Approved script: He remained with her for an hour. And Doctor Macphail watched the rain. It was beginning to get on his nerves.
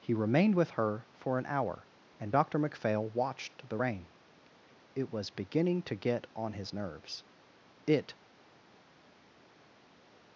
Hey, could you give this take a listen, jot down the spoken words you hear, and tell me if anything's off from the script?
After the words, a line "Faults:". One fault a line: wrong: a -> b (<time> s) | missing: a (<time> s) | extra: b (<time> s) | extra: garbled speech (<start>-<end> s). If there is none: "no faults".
He remained with her for an hour. And Doctor Macphail watched the rain. It was beginning to get on his nerves. It
Faults:
extra: It (7.9 s)